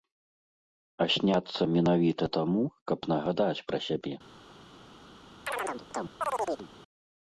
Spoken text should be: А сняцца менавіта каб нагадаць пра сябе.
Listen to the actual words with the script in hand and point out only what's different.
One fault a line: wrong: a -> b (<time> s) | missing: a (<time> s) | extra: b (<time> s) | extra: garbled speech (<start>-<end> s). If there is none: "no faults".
extra: таму (2.4 s)